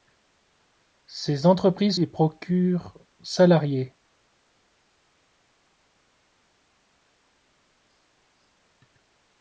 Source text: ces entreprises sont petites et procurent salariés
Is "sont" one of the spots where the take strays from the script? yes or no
yes